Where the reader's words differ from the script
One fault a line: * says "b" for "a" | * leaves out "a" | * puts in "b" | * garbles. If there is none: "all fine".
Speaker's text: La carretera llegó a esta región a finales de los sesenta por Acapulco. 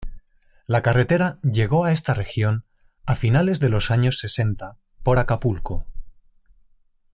* puts in "años"